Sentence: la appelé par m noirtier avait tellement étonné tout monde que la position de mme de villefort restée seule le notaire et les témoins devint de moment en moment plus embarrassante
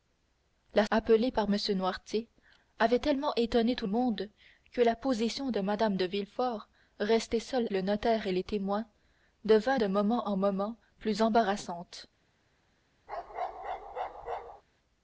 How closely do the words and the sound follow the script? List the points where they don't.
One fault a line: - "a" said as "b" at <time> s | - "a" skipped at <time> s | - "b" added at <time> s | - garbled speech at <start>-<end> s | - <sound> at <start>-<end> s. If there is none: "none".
- bark at 13.1-14.6 s